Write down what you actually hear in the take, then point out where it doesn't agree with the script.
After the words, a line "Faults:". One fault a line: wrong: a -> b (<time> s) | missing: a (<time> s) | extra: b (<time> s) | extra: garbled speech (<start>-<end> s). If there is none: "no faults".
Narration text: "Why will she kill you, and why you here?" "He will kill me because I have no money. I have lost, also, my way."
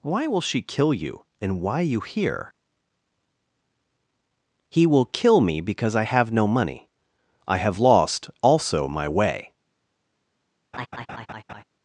"Why will she kill you, and why you here?" "He will kill me because I have no money. I have lost, also, my way."
Faults:
no faults